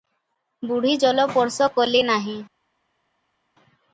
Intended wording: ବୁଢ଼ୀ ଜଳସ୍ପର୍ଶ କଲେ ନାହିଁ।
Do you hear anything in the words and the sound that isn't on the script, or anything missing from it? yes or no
no